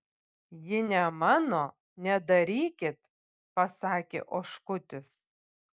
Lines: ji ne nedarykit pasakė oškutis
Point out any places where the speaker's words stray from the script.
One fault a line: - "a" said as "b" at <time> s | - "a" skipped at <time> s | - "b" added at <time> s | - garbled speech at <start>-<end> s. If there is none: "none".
- "mano" added at 1.2 s